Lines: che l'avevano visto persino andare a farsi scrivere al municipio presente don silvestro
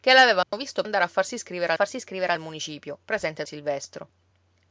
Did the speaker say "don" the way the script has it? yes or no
no